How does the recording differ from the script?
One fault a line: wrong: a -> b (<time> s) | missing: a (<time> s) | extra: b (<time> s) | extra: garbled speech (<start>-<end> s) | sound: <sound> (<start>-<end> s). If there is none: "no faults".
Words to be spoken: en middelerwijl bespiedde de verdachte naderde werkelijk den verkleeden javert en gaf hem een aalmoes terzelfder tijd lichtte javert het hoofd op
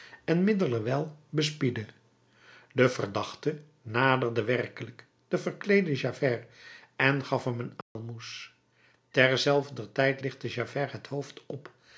sound: dropout (7.8-8.0 s)